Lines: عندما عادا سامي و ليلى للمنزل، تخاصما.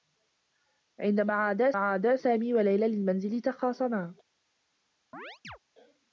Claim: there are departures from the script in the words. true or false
true